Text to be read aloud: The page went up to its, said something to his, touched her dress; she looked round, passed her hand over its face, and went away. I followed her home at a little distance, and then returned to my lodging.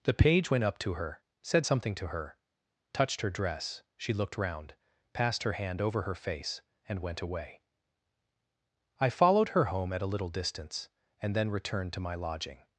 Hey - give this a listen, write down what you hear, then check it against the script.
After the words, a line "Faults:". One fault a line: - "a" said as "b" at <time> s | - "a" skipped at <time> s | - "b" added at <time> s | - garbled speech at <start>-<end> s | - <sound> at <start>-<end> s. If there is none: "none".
The page went up to her, said something to her, touched her dress; she looked round, passed her hand over her face, and went away. I followed her home at a little distance, and then returned to my lodging.
Faults:
- "its" said as "her" at 0.9 s
- "his" said as "her" at 2.1 s
- "its" said as "her" at 6.0 s